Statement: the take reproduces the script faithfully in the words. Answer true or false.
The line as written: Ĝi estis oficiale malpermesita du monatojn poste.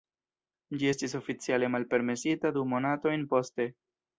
true